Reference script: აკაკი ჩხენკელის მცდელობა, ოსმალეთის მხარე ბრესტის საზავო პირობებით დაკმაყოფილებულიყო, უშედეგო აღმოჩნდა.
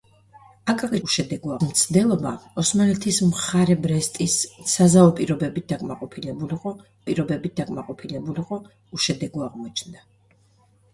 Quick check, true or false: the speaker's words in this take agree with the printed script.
false